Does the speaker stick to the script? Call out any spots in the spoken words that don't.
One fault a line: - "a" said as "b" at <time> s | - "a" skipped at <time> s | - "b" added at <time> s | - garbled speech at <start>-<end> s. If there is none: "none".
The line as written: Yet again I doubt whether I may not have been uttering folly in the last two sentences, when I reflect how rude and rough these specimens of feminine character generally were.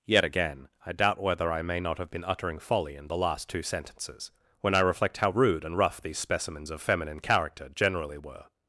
none